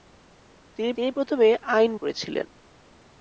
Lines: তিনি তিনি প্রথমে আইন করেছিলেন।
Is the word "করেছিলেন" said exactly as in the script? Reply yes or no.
yes